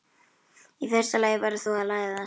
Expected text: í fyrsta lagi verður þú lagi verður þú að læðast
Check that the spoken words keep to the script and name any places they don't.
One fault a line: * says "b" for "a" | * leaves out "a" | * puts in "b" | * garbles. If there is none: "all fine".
* leaves out "lagi verður þú"